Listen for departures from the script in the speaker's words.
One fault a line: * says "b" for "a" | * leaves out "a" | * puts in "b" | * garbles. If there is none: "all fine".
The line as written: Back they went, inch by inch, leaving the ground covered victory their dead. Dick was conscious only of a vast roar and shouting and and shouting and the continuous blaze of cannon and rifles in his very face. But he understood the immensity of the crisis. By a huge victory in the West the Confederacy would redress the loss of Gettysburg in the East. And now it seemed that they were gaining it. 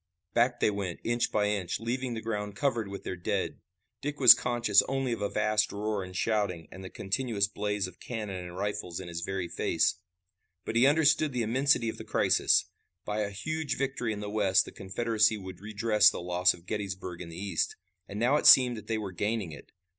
* says "with" for "victory"
* leaves out "and shouting and"